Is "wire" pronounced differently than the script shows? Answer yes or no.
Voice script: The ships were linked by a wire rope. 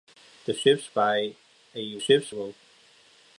yes